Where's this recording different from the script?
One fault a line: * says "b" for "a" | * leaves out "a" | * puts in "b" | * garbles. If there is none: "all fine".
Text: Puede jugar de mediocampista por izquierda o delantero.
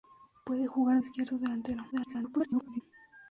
* leaves out "de mediocampista por"
* garbles